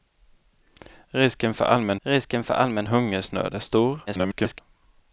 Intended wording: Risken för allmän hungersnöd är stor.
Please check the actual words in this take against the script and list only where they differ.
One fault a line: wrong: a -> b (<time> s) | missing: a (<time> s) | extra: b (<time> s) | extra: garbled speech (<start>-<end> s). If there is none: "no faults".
extra: risken för allmän (2.0 s)
extra: garbled speech (4.1-4.6 s)